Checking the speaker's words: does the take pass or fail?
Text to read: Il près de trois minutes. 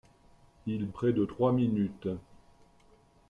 pass